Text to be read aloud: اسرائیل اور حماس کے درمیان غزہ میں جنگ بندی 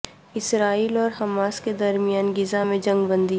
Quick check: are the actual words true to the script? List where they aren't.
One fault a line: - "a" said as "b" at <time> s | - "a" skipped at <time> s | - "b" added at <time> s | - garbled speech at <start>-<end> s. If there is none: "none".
none